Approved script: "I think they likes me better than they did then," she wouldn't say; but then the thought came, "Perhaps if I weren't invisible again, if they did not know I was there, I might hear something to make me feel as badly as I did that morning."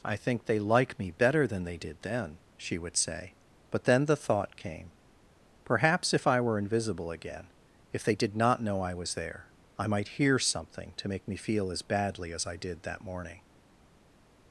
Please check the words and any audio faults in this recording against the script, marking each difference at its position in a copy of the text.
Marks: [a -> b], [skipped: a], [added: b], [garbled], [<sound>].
"I think they [likes -> like] me better than they did then," she [wouldn't -> would] say; but then the thought came, "Perhaps if I [weren't -> were] invisible again, if they did not know I was there, I might hear something to make me feel as badly as I did that morning."